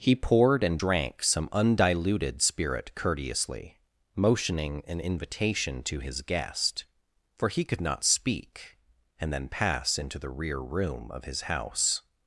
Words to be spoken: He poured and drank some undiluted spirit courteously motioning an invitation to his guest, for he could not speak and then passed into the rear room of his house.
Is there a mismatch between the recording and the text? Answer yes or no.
yes